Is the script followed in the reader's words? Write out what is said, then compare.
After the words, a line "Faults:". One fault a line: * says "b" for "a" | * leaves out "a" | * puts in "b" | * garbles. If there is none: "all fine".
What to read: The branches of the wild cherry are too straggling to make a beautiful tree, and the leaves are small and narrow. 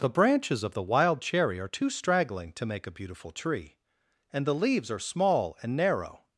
The branches of the wild cherry are too straggling to make a beautiful tree, and the leaves are small and narrow.
Faults:
all fine